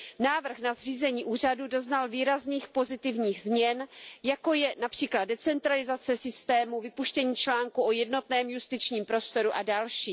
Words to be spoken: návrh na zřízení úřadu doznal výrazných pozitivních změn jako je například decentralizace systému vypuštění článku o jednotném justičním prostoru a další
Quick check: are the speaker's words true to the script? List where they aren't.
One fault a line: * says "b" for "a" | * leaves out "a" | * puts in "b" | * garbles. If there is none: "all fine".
all fine